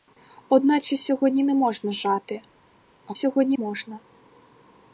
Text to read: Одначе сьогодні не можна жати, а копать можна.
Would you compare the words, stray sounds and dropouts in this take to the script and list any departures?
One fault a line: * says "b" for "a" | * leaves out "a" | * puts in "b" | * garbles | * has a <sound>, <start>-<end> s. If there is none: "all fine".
* says "сьогодні" for "копать"